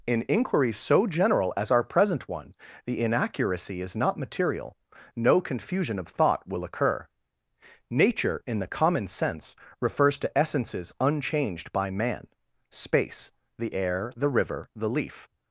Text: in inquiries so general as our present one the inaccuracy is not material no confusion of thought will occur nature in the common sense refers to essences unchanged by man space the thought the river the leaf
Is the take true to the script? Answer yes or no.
no